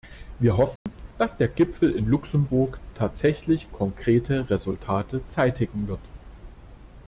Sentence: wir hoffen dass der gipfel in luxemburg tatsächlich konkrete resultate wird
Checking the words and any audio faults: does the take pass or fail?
fail